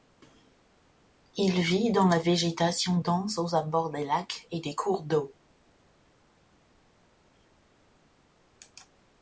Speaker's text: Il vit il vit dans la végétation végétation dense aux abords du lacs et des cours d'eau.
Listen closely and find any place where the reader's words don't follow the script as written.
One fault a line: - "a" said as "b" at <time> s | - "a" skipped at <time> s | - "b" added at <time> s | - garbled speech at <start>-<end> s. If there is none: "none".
- "il vit" skipped at 1.9 s
- "végétation" skipped at 3.0 s
- "du" said as "des" at 3.9 s